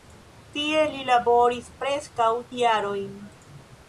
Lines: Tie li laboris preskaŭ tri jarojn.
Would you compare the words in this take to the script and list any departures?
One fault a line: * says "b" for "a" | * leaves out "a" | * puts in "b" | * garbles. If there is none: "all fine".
* leaves out "tri"